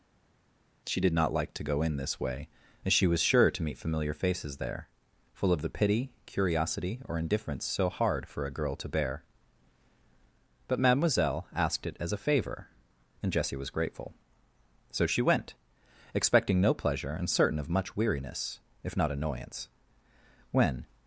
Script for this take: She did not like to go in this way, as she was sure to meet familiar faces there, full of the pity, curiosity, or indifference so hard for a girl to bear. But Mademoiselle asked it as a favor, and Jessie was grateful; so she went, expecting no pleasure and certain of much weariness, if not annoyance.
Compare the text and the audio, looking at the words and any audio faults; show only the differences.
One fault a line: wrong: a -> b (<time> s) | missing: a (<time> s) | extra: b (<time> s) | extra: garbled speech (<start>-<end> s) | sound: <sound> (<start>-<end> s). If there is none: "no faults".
extra: When (20.5 s)